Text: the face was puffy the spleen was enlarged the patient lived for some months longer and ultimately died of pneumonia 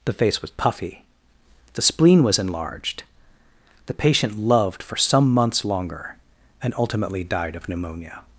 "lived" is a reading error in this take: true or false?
true